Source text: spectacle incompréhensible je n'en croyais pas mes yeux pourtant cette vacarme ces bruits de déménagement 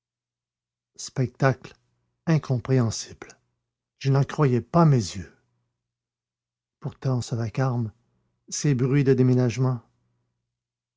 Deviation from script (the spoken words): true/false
true